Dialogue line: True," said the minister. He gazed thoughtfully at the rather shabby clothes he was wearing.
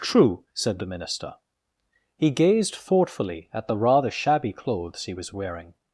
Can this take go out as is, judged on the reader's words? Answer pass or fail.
pass